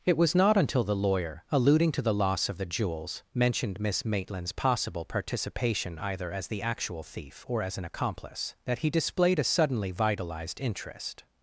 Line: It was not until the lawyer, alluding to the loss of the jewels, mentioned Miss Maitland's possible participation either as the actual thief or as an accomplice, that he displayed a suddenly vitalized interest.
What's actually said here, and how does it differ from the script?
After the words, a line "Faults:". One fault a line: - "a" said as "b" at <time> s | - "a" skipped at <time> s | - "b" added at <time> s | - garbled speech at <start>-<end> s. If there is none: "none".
It was not until the lawyer, alluding to the loss of the jewels, mentioned Miss Maitland's possible participation either as the actual thief or as an accomplice, that he displayed a suddenly vitalized interest.
Faults:
none